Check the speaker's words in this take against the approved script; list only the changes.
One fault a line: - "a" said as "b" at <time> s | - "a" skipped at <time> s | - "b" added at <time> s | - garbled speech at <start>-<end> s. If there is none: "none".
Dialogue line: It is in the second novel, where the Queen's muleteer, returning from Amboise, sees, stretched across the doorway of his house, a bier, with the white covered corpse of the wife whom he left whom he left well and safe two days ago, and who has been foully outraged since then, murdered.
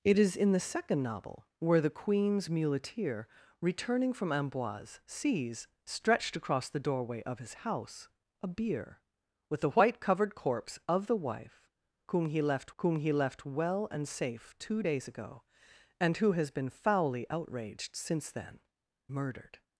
none